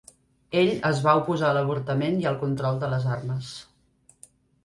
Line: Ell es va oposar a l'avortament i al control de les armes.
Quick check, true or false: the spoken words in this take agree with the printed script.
true